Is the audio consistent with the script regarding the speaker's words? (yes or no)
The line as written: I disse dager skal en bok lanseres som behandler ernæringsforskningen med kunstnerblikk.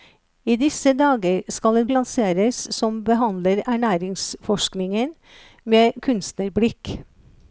no